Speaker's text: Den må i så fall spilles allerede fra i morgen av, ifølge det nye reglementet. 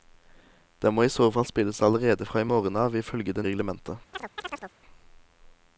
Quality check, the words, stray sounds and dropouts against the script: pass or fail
fail